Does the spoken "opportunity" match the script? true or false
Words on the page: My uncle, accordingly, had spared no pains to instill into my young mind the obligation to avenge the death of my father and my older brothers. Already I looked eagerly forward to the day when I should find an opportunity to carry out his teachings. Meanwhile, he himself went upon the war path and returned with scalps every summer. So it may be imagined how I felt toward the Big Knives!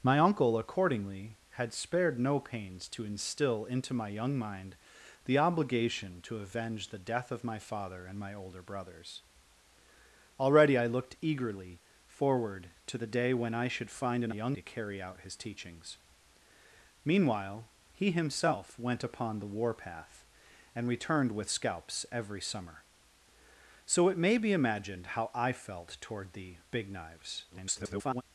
false